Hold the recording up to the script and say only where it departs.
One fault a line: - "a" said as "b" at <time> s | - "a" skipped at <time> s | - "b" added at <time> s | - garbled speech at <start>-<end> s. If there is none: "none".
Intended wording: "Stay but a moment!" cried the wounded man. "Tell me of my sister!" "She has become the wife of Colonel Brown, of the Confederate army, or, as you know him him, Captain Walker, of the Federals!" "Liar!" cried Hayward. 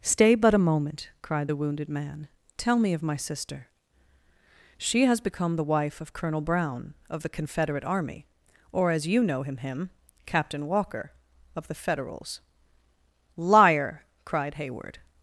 none